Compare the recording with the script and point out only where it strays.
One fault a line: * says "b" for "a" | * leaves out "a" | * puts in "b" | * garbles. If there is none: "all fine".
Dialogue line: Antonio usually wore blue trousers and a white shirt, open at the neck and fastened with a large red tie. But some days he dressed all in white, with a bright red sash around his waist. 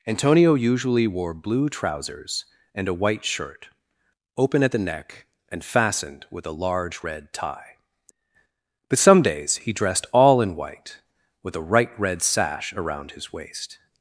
* says "right" for "bright"